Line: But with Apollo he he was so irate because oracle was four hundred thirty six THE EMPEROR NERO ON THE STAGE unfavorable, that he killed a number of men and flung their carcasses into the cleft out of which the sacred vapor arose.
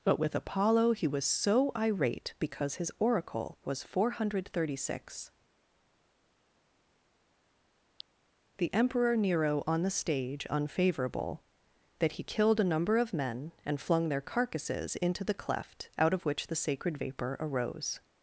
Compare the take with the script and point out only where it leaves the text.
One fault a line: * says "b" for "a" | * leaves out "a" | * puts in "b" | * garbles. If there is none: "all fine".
* leaves out "he"
* puts in "his"